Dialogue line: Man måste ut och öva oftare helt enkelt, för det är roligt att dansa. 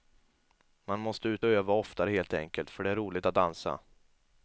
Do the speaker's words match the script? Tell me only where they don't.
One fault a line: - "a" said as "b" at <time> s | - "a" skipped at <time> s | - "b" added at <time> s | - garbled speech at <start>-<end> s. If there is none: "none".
none